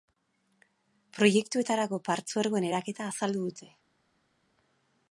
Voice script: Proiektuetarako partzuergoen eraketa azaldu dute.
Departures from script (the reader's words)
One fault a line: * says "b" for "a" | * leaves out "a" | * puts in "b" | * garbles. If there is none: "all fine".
all fine